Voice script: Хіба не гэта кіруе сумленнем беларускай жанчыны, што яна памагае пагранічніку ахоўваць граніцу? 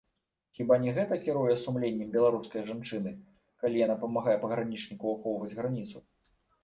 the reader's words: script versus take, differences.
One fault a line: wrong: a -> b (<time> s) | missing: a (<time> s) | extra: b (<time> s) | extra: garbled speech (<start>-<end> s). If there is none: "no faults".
wrong: што -> калі (3.6 s)